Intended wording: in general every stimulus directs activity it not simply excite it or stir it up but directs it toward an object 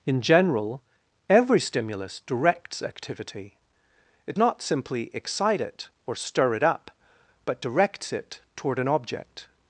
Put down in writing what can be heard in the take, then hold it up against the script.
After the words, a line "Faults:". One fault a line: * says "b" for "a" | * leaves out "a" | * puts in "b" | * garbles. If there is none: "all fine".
in general every stimulus directs activity it not simply excite it or stir it up but directs it toward an object
Faults:
all fine